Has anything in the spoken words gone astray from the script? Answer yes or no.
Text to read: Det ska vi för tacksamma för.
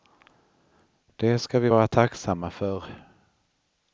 yes